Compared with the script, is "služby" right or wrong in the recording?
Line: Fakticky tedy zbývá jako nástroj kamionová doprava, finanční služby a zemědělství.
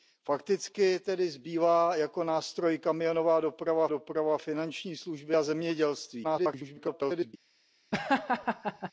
right